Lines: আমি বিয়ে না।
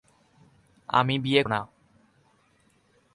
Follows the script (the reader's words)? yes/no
yes